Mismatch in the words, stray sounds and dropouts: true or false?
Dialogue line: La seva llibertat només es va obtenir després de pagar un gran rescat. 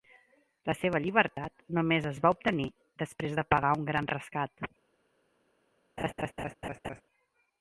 true